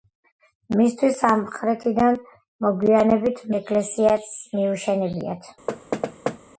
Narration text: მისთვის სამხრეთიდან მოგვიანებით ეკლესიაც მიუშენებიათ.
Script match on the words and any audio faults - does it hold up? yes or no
no